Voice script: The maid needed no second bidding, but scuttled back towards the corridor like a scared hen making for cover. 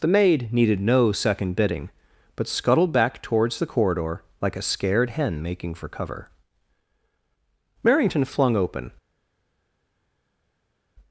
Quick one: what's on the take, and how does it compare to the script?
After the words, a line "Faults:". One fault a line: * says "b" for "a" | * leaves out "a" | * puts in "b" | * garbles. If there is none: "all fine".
The maid needed no second bidding, but scuttled back towards the corridor like a scared hen making for cover. Merrington flung open
Faults:
* puts in "Merrington flung open"